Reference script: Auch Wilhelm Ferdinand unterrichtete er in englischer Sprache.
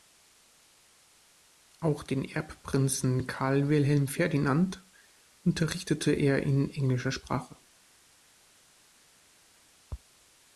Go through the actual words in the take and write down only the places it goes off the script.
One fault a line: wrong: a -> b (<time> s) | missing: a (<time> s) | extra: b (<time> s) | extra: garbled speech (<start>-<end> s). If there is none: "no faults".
extra: den Erbprinzen Karl (2.0 s)